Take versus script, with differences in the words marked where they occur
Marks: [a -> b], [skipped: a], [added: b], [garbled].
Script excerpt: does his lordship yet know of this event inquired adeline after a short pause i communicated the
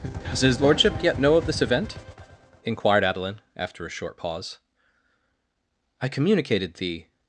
does his lordship yet know of this event inquired adeline after a short pause i communicated the